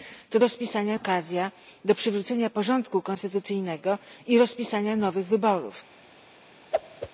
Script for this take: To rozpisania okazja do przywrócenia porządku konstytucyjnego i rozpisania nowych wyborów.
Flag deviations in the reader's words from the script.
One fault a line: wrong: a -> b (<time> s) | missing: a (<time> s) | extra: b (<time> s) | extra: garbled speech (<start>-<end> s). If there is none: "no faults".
no faults